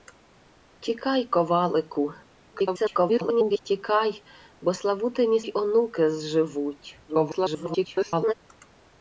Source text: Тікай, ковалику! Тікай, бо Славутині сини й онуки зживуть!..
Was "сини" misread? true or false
true